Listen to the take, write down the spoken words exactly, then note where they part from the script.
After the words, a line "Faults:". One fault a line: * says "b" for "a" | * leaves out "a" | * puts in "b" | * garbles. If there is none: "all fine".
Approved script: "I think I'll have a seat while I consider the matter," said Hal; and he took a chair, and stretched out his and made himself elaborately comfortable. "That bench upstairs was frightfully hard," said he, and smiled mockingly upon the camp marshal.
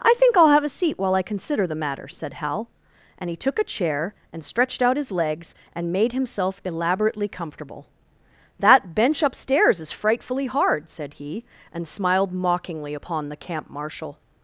"I think I'll have a seat while I consider the matter," said Hal; and he took a chair, and stretched out his legs, and made himself elaborately comfortable. "That bench upstairs is frightfully hard," said he, and smiled mockingly upon the camp marshal.
Faults:
* puts in "legs"
* says "is" for "was"